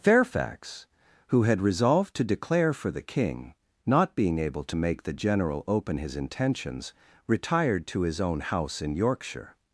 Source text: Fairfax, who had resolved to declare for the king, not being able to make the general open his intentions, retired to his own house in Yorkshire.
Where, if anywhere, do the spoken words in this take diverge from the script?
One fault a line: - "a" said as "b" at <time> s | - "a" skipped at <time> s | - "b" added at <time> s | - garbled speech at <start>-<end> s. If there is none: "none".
none